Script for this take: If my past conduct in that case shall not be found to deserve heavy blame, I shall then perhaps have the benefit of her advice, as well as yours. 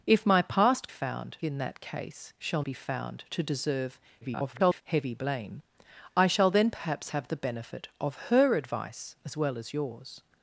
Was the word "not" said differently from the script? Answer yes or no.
yes